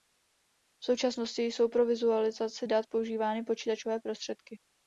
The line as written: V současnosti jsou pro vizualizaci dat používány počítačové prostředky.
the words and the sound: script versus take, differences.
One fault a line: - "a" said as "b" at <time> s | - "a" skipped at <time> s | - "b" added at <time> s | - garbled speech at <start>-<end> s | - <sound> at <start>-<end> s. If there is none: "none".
none